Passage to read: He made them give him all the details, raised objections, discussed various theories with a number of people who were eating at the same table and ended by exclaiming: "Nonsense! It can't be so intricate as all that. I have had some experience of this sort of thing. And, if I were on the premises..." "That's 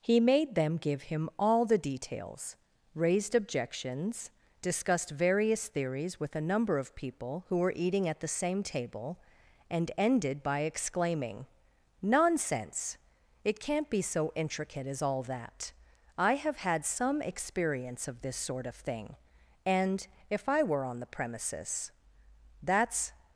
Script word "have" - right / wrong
right